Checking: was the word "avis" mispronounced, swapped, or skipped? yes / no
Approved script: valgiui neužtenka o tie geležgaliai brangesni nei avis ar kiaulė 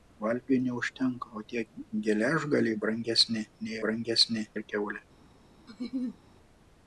yes